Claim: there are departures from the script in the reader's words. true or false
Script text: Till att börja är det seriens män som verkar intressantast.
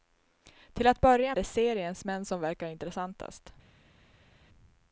false